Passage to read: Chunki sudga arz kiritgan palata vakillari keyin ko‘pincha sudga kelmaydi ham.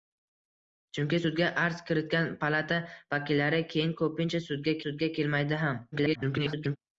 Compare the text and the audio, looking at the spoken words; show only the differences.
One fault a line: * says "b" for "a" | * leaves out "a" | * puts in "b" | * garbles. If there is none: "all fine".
* puts in "sudga"
* garbles